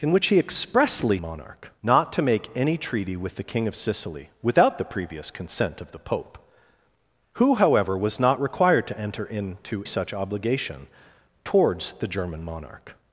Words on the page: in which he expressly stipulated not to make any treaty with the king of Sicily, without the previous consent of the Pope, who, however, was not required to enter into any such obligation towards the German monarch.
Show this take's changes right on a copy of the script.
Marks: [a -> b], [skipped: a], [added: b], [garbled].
in which he expressly [stipulated -> monarch] not to make any treaty with the king of Sicily, without the previous consent of the Pope, who, however, was not required to enter into [skipped: any] such obligation towards the German monarch.